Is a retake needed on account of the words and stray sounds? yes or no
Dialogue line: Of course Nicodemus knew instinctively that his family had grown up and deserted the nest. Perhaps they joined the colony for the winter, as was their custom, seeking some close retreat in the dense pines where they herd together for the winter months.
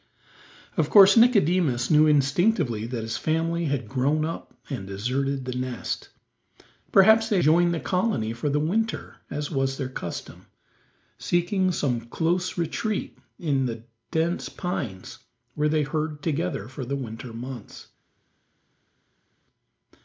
no